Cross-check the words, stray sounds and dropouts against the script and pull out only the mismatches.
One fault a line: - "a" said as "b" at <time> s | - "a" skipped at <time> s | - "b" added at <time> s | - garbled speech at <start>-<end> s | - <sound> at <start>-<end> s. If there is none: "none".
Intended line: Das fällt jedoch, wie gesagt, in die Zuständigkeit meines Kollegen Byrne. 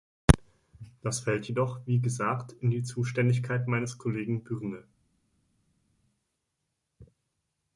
none